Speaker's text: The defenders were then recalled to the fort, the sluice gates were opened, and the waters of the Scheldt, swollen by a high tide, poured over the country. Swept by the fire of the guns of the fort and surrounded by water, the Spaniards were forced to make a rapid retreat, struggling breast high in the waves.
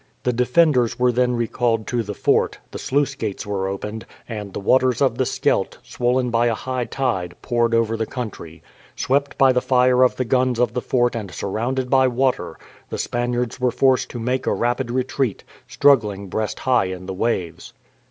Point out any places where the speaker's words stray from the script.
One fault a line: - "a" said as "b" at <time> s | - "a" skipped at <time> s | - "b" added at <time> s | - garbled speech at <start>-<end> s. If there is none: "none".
none